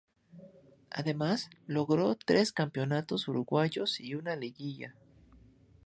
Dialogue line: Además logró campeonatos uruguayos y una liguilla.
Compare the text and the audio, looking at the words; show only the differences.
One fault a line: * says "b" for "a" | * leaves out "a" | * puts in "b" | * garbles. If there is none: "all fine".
* puts in "tres"